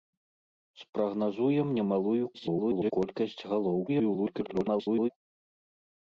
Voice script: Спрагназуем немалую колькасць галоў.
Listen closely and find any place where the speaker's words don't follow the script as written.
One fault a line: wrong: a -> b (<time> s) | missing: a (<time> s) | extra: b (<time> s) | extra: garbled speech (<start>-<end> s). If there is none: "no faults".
extra: garbled speech (2.3-2.9 s)
extra: garbled speech (3.9-5.1 s)